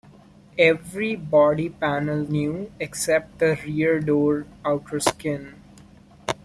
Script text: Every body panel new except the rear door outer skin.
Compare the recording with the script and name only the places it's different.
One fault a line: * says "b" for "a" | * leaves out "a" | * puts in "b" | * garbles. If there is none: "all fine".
all fine